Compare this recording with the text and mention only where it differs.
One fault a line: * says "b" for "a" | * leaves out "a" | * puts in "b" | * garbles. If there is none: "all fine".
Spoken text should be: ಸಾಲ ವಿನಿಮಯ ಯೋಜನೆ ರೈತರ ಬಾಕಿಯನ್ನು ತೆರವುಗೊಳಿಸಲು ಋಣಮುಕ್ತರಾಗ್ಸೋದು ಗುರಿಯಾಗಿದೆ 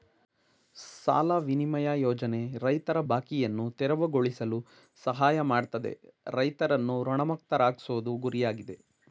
* puts in "ಸಹಾಯ ಮಾಡ್ತದೆ ರೈತರನ್ನು"